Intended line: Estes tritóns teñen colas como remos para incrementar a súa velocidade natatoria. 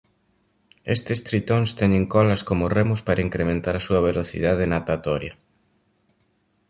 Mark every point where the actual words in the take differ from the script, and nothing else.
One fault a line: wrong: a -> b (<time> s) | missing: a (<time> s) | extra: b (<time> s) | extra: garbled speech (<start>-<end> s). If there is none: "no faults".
no faults